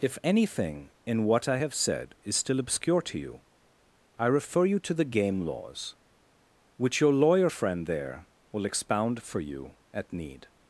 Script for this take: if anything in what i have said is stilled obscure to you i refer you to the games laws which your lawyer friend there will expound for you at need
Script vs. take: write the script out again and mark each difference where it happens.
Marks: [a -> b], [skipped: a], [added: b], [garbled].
if anything in what i have said is [stilled -> still] obscure to you i refer you to the [games -> game] laws which your lawyer friend there will expound for you at need